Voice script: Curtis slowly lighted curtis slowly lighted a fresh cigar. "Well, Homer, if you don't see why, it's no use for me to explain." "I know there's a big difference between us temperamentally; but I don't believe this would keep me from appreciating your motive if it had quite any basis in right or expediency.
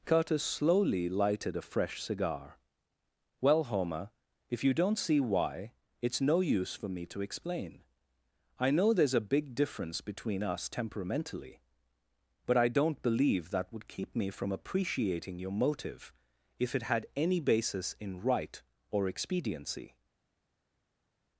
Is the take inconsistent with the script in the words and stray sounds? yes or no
yes